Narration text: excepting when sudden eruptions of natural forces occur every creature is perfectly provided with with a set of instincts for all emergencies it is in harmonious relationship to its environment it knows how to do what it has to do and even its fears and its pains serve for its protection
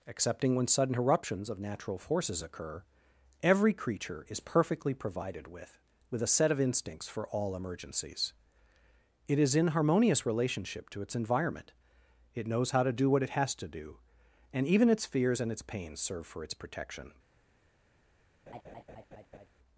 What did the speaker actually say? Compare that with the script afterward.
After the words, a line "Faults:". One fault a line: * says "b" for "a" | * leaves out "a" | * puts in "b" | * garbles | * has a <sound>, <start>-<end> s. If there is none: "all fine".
excepting when sudden eruptions of natural forces occur every creature is perfectly provided with with a set of instincts for all emergencies it is in harmonious relationship to its environment it knows how to do what it has to do and even its fears and its pains serve for its protection
Faults:
* has a laugh, 18.5-19.5 s